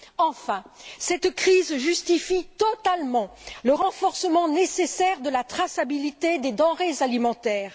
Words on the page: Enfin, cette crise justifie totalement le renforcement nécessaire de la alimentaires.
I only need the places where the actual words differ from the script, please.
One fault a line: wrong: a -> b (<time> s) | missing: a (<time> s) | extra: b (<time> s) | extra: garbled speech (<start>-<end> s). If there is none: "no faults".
extra: traçabilité des denrées (5.4 s)